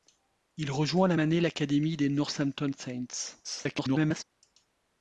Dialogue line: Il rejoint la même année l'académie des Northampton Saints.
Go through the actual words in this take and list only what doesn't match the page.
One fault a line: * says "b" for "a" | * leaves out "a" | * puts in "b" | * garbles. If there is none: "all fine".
* leaves out "même"
* garbles